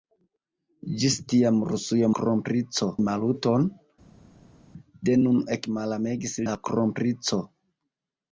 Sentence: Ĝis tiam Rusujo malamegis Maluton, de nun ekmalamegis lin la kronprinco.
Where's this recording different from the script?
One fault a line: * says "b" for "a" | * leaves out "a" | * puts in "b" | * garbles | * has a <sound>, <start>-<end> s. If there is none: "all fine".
* says "kronprinco" for "malamegis"
* leaves out "lin"